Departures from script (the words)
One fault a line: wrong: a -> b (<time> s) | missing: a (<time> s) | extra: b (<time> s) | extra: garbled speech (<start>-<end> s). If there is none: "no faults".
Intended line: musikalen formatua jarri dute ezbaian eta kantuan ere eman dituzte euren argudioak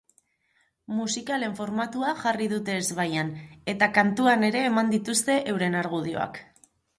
no faults